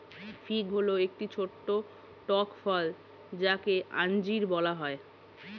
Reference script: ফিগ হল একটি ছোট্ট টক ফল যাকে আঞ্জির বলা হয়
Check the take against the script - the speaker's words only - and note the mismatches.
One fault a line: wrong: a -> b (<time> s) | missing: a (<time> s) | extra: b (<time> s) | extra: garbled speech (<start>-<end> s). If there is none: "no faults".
no faults